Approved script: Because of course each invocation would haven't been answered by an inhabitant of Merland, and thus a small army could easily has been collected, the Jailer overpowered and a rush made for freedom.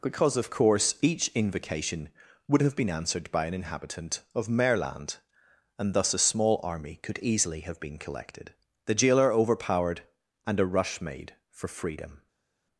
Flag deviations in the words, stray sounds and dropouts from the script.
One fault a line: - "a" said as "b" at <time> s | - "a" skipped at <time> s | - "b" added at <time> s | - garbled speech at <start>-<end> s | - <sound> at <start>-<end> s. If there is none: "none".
- "haven't" said as "have" at 2.6 s
- "has" said as "have" at 7.6 s